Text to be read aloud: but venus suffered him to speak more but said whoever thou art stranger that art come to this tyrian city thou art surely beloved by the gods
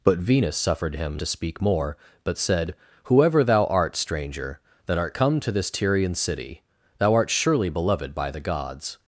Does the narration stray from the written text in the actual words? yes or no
no